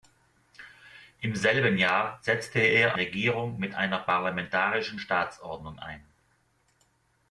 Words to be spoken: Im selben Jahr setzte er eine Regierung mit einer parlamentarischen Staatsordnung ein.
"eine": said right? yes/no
no